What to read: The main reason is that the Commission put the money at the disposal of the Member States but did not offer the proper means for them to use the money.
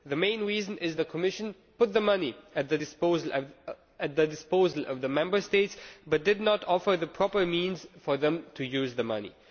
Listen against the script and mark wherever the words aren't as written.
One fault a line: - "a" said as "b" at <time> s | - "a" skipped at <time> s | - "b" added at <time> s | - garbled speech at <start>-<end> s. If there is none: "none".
- "that" skipped at 1.0 s